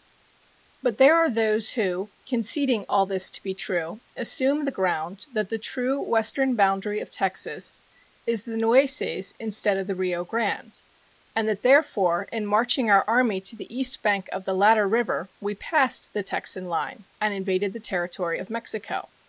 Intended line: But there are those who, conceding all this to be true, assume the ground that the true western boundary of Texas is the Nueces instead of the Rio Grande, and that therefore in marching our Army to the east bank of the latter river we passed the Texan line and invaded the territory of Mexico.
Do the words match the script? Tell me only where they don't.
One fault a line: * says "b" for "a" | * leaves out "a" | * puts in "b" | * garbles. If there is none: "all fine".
all fine